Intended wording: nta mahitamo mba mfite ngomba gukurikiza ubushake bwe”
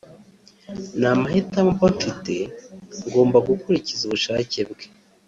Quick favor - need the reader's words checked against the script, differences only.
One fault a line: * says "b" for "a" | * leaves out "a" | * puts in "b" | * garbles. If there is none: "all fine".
all fine